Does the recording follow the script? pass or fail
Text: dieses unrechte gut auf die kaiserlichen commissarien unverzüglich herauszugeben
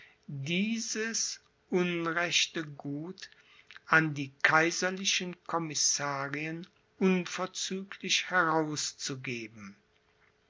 fail